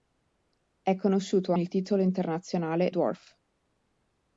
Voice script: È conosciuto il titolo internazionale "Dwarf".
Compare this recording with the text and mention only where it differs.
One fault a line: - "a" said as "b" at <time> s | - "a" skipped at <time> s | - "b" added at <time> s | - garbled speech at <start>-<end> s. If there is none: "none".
none